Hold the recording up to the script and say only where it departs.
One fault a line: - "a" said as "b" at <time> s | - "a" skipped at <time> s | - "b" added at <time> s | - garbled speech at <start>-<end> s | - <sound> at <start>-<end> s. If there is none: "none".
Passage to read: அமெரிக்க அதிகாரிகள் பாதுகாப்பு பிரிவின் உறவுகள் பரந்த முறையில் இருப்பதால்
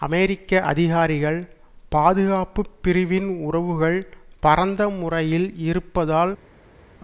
none